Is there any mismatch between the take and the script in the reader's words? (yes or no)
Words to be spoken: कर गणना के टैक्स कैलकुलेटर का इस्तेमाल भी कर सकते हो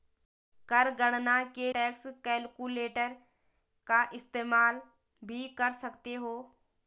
no